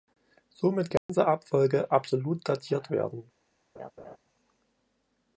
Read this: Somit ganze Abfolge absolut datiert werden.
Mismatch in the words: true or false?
false